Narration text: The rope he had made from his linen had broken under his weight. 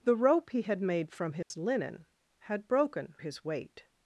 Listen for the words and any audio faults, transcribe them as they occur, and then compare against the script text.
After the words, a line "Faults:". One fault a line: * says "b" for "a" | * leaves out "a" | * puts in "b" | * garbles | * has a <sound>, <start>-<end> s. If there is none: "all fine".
The rope he had made from his linen had broken his weight.
Faults:
* has a dropout, 1.4-1.5 s
* leaves out "under"